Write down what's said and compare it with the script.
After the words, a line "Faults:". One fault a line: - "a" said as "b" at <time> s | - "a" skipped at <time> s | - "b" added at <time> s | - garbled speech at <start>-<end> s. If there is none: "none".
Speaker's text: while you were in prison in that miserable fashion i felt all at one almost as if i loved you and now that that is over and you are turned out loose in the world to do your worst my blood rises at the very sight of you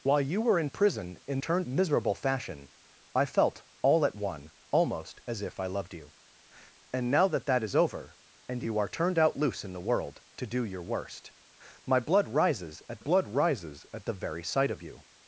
while you were in prison in turned miserable fashion i felt all at one almost as if i loved you and now that that is over and you are turned out loose in the world to do your worst my blood rises at blood rises at the very sight of you
Faults:
- "that" said as "turned" at 1.4 s
- "blood rises at" added at 13.0 s